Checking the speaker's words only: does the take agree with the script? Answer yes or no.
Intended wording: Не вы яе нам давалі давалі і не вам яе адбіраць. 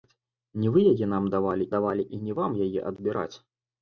yes